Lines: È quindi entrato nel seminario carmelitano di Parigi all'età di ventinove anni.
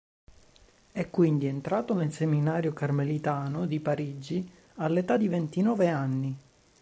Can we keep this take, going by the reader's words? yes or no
yes